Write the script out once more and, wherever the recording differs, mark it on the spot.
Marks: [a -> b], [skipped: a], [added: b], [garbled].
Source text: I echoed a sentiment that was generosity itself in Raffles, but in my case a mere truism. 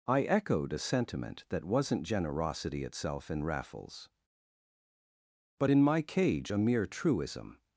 I echoed a sentiment that [was -> wasn't] generosity itself in Raffles, but in my [case -> cage] a mere truism.